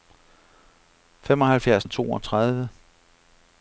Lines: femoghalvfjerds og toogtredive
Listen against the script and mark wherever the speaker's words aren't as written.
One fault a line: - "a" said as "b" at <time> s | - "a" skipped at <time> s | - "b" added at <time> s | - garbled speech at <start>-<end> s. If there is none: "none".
none